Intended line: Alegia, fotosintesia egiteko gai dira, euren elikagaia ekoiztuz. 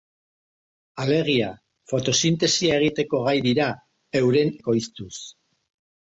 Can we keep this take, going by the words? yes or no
no